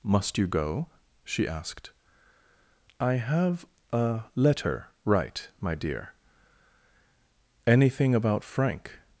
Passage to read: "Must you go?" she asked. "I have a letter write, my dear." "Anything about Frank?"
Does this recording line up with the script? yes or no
yes